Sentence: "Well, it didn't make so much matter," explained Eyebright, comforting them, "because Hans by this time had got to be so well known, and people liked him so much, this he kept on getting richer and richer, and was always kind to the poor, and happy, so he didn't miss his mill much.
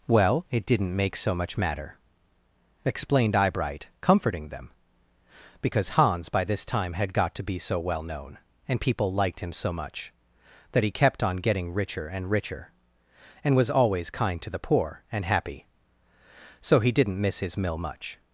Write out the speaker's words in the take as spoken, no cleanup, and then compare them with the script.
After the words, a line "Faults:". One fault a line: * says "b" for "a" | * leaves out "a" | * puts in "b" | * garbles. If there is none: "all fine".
"Well, it didn't make so much matter," explained Eyebright, comforting them, "because Hans by this time had got to be so well known, and people liked him so much, that he kept on getting richer and richer, and was always kind to the poor, and happy, so he didn't miss his mill much.
Faults:
* says "that" for "this"